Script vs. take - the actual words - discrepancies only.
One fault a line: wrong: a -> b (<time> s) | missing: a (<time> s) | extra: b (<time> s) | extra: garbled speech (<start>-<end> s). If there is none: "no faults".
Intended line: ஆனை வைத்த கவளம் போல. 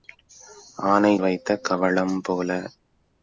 no faults